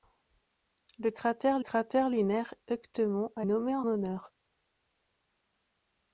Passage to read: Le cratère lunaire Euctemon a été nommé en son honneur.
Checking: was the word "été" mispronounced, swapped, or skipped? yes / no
yes